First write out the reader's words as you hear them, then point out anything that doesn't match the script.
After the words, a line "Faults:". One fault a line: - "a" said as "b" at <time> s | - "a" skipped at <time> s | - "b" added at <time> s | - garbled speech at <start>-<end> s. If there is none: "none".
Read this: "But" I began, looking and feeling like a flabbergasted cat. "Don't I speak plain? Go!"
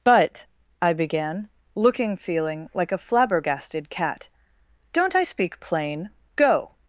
"But" I began, looking feeling like a flabbergasted cat. "Don't I speak plain? Go!"
Faults:
- "and" skipped at 2.2 s